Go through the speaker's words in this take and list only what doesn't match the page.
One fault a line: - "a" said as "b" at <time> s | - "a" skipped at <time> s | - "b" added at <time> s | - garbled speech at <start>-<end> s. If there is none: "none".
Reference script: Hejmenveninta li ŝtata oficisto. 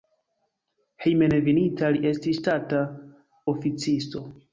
- "estis" added at 2.1 s